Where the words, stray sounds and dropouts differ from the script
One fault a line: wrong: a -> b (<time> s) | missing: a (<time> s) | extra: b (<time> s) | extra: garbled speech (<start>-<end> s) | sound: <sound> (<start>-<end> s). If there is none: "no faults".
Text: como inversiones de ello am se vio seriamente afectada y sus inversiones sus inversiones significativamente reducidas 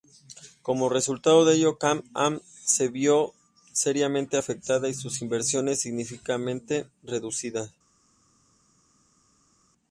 wrong: inversiones -> resultado (0.9 s)
extra: can (1.8 s)
missing: sus inversiones (5.8 s)